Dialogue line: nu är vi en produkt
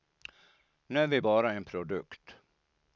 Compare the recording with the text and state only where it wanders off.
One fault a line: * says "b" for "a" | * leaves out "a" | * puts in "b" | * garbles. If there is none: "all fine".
* puts in "bara"